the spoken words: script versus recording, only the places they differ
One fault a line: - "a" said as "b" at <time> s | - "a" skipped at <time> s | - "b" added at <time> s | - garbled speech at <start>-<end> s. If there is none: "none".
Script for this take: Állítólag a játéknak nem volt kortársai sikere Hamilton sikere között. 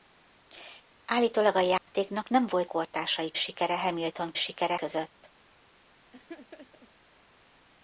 none